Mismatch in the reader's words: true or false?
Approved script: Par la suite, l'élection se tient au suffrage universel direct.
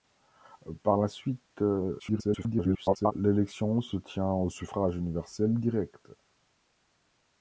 true